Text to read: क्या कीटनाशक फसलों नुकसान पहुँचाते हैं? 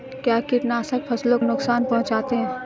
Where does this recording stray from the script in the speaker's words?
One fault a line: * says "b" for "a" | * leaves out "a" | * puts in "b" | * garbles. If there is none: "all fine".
all fine